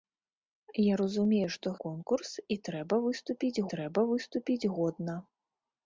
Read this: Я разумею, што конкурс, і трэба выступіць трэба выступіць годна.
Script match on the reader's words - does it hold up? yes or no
yes